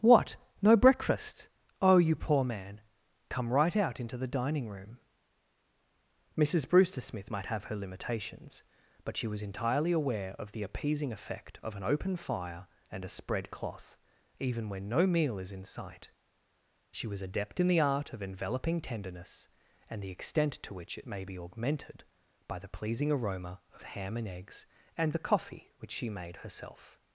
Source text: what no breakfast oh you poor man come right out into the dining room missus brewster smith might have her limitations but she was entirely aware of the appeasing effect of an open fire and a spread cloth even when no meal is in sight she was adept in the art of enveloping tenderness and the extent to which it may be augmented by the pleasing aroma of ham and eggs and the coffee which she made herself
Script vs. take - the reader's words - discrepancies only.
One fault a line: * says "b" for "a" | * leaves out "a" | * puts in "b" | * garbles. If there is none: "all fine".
all fine